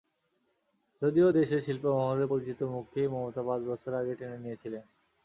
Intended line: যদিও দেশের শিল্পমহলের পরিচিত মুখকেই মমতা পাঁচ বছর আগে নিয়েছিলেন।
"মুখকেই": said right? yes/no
yes